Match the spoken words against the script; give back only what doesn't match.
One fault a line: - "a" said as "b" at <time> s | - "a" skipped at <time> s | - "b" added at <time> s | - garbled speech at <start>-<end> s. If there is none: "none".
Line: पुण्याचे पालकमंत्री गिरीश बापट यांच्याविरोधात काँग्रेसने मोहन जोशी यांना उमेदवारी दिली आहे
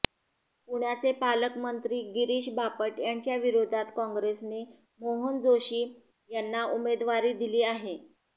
none